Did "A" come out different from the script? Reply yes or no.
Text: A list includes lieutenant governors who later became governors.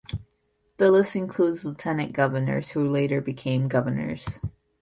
yes